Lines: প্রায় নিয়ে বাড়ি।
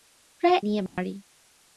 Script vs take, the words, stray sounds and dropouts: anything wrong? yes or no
yes